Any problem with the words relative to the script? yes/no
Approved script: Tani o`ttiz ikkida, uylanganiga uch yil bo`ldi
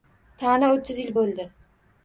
yes